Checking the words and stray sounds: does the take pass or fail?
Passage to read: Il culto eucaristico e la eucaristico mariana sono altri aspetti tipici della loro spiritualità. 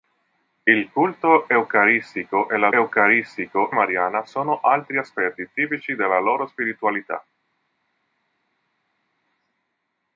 pass